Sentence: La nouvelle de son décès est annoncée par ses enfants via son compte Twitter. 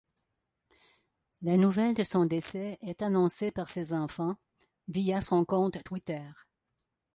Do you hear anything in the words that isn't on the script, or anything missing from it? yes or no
no